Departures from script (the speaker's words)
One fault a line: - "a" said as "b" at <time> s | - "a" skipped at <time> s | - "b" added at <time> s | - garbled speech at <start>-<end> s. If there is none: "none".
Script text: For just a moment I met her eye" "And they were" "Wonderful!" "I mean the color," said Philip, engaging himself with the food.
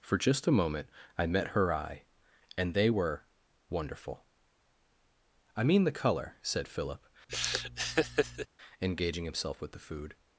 none